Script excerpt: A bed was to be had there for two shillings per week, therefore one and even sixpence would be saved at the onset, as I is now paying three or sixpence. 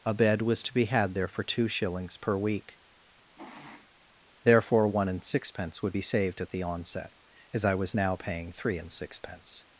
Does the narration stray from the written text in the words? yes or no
yes